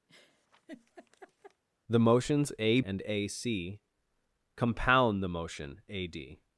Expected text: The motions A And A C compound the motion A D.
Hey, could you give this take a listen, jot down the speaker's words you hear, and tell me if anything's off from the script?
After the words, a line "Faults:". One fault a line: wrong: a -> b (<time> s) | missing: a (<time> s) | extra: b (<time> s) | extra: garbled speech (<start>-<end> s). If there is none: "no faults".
The motions A And A C compound the motion A D.
Faults:
no faults